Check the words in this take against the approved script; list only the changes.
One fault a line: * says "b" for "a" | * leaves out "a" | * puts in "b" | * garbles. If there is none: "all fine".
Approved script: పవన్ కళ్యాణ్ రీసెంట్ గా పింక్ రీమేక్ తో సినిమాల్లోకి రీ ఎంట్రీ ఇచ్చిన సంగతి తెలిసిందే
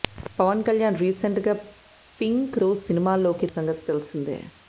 * leaves out "రీమేక్"
* leaves out "రీ ఎంట్రీ ఇచ్చిన"